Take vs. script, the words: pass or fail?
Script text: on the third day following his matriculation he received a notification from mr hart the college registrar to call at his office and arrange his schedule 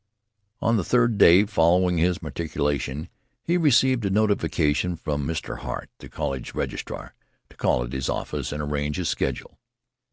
pass